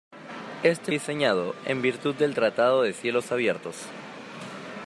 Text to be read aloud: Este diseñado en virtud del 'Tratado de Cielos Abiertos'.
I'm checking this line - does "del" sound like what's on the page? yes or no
yes